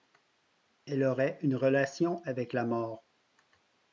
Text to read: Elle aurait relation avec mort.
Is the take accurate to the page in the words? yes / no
no